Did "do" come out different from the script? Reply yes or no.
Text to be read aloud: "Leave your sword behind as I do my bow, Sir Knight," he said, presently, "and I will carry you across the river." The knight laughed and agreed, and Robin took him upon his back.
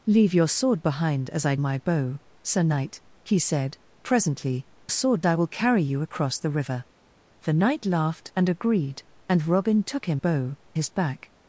yes